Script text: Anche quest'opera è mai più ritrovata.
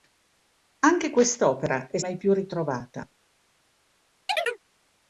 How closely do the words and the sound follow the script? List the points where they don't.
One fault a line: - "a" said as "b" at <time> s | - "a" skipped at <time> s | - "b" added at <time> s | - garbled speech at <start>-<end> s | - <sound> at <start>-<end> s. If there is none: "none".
- chirp at 4.3-4.6 s